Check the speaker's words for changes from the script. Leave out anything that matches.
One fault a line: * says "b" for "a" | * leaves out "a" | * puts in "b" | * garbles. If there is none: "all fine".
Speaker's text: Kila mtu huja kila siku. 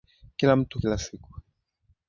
* leaves out "huja"